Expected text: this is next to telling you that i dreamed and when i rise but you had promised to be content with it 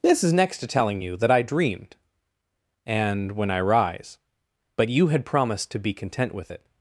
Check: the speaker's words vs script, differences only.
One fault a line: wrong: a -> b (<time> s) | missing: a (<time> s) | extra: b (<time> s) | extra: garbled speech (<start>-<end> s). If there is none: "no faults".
no faults